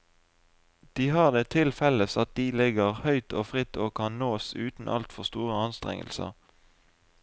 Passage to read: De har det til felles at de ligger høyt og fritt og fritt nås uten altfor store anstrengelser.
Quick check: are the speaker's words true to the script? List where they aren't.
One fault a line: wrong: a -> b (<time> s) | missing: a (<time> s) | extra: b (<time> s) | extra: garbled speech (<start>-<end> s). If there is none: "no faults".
wrong: fritt -> kan (4.0 s)